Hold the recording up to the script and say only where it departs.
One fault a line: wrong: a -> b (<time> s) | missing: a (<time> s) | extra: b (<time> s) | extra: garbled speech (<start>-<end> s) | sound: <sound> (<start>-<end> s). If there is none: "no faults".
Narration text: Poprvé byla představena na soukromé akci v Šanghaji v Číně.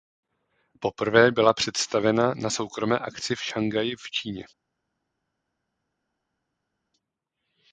no faults